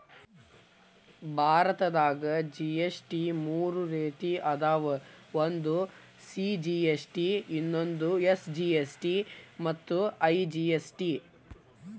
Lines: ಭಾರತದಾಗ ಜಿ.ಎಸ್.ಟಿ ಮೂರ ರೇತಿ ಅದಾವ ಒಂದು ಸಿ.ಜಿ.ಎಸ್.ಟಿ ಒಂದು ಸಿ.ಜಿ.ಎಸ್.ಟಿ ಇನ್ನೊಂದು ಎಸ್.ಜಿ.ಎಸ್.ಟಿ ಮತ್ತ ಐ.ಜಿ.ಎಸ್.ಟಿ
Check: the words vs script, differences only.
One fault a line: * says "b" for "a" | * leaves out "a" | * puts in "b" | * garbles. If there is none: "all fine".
* leaves out "ಒಂದು ಸಿ.ಜಿ.ಎಸ್.ಟಿ"